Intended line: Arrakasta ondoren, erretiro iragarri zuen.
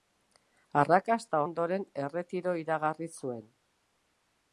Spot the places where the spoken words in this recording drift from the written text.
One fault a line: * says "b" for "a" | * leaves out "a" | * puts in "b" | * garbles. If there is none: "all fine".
all fine